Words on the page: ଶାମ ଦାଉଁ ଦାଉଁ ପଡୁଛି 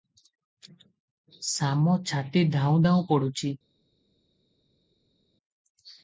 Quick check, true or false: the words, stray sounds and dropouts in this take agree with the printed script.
false